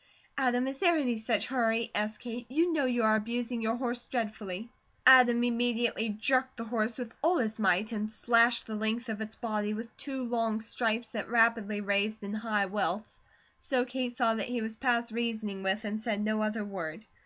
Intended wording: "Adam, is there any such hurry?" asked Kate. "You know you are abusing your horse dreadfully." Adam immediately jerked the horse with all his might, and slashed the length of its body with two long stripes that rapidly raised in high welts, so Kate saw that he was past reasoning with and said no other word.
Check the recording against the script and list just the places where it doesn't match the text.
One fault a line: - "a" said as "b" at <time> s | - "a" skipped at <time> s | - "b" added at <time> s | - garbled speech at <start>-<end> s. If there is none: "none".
none